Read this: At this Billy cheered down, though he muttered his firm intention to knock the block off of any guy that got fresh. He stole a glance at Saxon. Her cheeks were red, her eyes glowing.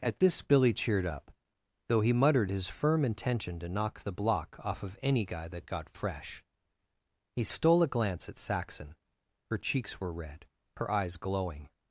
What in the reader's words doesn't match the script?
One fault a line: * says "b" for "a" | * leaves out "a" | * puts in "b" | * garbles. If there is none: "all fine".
* says "up" for "down"